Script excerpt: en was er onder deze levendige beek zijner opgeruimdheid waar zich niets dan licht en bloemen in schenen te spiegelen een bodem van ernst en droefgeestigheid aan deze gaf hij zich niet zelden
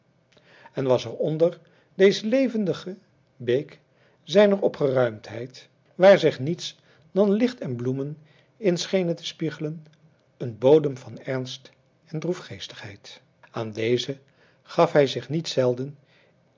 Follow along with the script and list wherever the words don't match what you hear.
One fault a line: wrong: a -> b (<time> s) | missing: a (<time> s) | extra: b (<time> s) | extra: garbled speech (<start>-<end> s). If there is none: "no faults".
no faults